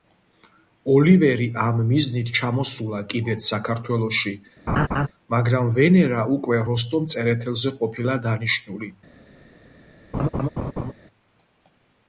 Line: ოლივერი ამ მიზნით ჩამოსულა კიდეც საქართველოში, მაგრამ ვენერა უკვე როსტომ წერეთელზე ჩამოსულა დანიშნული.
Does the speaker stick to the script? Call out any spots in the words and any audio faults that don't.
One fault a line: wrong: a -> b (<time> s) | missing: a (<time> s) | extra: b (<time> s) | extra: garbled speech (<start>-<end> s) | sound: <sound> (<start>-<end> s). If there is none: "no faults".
sound: laugh (4.7-5.1 s)
wrong: ჩამოსულა -> ყოფილა (7.8 s)
sound: laugh (10.1-10.9 s)